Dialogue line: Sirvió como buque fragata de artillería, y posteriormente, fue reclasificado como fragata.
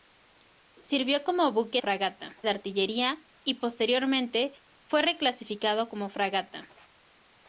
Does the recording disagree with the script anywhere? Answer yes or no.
no